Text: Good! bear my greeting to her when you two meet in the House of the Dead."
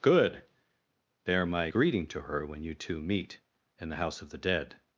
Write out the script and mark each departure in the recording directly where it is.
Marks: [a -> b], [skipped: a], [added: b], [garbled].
Good! bear my greeting to her when you two meet in the House of the Dead."